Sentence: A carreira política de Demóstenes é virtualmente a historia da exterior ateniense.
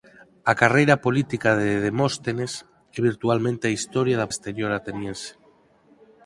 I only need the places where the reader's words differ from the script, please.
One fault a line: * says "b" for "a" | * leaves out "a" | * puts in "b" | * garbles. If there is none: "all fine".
all fine